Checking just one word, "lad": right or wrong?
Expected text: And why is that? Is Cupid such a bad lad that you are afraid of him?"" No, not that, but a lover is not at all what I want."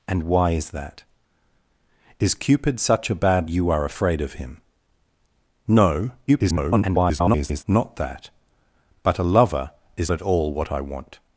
wrong